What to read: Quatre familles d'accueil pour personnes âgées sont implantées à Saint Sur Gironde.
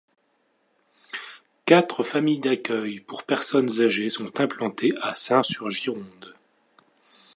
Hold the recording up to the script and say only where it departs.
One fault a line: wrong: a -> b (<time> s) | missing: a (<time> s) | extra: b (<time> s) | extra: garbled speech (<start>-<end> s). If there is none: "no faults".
no faults